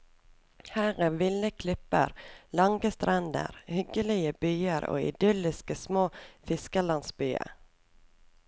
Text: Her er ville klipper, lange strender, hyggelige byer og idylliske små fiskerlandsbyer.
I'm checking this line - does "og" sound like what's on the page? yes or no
yes